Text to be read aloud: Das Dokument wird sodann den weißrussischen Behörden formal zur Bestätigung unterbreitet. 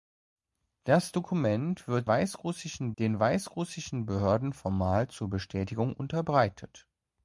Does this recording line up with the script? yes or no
no